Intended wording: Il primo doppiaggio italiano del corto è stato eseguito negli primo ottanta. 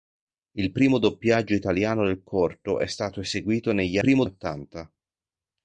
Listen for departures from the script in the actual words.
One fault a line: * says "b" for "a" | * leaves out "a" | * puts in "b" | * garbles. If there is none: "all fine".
all fine